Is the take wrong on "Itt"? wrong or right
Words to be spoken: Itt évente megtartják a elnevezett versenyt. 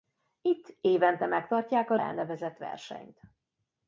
right